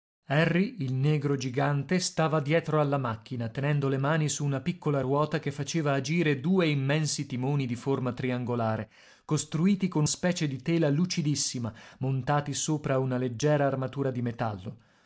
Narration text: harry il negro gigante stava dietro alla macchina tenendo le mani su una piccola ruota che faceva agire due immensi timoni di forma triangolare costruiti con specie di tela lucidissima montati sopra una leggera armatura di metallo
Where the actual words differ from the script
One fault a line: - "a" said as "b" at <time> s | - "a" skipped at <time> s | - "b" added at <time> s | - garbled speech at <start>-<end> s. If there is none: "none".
none